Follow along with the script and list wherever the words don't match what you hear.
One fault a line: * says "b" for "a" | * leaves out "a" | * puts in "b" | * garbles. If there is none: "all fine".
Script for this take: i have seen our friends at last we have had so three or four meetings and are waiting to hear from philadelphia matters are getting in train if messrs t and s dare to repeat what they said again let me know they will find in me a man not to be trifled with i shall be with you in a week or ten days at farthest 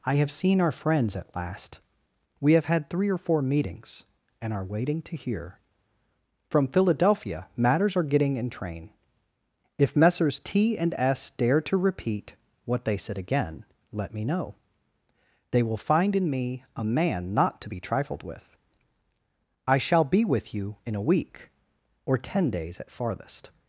* leaves out "so"